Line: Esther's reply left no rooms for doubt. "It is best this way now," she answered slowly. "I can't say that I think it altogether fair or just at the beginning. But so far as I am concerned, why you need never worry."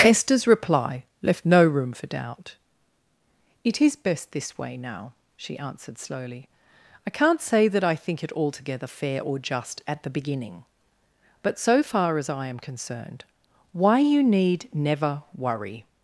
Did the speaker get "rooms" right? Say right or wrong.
wrong